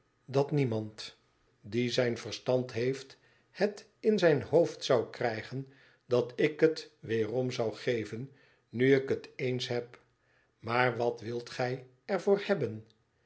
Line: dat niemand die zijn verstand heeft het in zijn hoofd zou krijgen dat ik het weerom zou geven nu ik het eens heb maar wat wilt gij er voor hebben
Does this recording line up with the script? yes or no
yes